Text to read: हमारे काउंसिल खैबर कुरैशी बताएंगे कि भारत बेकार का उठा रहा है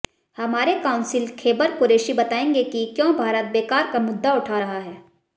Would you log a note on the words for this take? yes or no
yes